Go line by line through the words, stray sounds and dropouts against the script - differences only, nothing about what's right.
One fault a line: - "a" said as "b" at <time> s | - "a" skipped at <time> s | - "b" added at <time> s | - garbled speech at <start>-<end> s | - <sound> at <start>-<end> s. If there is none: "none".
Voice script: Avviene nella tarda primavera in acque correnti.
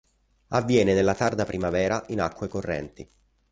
none